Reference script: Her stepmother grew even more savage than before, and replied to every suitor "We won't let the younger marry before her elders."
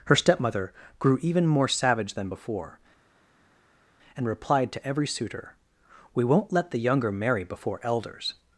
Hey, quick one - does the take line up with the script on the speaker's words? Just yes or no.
no